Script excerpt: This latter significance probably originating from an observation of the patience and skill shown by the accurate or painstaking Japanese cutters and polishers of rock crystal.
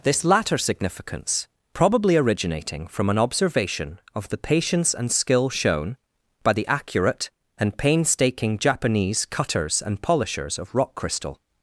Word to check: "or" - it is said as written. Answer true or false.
false